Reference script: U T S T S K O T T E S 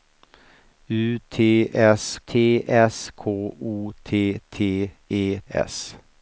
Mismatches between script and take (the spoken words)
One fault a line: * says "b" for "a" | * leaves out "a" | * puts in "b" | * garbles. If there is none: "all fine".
all fine